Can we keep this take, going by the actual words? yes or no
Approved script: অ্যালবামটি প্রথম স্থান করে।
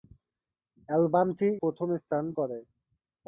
yes